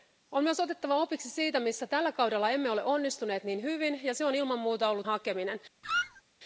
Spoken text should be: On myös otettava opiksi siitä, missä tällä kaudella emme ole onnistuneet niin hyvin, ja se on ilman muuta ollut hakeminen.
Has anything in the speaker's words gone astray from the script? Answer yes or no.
no